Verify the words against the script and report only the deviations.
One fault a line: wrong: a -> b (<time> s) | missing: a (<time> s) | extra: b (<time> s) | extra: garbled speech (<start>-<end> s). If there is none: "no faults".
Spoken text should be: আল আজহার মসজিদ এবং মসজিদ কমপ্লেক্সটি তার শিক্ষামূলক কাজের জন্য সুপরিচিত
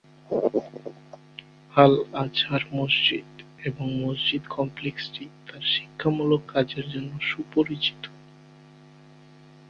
no faults